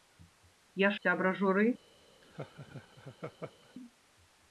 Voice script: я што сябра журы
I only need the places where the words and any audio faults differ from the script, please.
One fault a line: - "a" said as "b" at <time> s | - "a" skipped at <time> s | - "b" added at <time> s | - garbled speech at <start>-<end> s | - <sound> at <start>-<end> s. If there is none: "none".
- "што" skipped at 0.9 s
- laugh at 2.2-3.7 s